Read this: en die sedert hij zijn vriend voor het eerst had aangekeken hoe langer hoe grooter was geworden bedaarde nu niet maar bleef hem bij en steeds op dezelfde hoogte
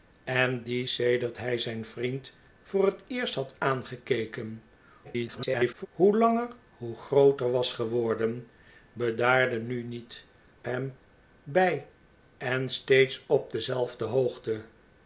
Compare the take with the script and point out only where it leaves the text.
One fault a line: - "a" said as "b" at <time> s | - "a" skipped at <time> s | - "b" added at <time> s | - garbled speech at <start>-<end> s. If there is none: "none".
- garbled speech at 5.0-5.9 s
- "maar bleef" skipped at 10.3 s